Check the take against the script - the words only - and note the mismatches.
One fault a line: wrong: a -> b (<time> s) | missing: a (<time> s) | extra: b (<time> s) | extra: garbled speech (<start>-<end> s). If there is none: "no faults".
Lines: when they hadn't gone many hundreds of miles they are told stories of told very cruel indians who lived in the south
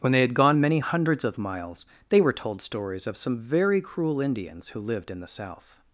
wrong: hadn't -> had (0.2 s)
wrong: are -> were (2.2 s)
wrong: told -> some (3.2 s)